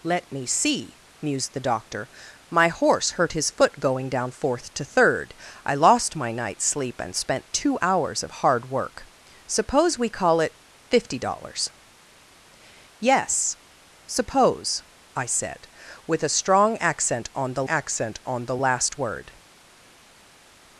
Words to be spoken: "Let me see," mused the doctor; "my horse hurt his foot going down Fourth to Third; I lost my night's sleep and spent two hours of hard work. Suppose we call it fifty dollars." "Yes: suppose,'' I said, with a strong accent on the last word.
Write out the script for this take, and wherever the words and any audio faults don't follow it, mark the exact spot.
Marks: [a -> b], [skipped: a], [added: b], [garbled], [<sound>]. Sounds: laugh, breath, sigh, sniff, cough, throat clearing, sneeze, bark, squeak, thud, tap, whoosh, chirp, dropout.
"Let me see," mused the doctor; "my horse hurt his foot going down Fourth to Third; I lost my night's sleep and spent two hours of hard work. Suppose we call it fifty dollars." "Yes: suppose,'' I said, with a strong accent on the [added: accent on the] last word.